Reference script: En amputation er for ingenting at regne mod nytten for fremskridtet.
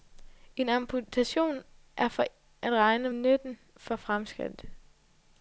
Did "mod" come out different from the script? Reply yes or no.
yes